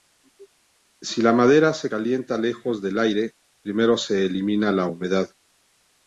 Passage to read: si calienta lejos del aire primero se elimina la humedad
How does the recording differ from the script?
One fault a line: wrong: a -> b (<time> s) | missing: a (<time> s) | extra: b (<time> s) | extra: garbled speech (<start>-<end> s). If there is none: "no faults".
extra: la madera se (1.2 s)